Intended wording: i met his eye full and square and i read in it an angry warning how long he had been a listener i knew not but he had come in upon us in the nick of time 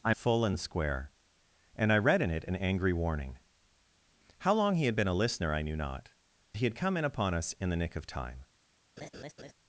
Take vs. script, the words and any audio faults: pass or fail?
fail